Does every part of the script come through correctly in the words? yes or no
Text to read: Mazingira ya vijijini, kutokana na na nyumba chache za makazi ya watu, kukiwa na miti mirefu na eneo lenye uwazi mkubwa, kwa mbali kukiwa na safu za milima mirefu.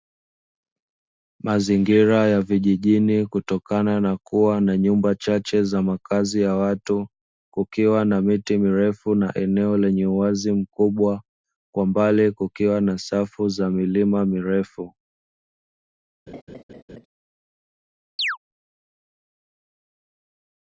no